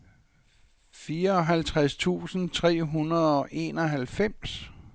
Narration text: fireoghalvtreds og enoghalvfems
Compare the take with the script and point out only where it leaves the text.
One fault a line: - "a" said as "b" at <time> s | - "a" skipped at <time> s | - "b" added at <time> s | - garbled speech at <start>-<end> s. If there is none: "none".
- "tusind tre hundrede" added at 1.9 s